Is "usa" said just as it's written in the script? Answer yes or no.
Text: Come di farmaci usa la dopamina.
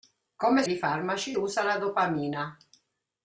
yes